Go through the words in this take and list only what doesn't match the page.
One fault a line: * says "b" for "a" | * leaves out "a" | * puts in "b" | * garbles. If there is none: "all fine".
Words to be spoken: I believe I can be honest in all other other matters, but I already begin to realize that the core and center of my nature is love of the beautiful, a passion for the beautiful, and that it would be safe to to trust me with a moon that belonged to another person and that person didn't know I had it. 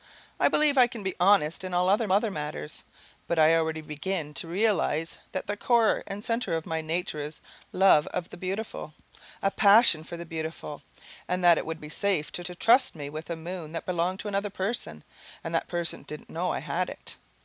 all fine